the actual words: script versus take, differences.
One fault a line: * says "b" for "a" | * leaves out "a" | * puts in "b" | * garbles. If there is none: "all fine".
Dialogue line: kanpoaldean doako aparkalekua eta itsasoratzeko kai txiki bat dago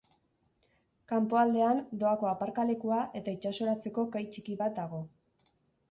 all fine